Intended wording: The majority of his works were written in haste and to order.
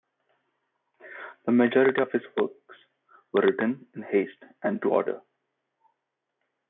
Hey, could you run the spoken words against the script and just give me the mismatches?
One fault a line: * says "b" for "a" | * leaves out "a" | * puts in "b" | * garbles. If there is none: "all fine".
all fine